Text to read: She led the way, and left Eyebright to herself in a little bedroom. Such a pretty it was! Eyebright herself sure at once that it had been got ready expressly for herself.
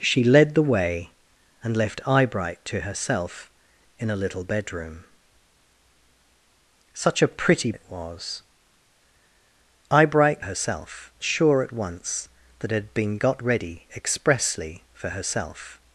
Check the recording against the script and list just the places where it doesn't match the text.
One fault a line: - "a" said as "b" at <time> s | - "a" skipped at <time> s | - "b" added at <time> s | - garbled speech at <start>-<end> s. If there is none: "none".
none